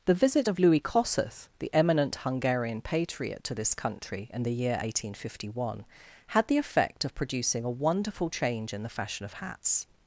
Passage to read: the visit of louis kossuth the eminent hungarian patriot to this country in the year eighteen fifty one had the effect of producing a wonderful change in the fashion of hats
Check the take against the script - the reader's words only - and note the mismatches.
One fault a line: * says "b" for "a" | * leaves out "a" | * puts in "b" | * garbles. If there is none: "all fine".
all fine